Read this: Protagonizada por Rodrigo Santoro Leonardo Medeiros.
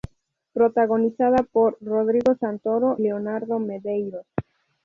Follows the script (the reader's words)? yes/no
yes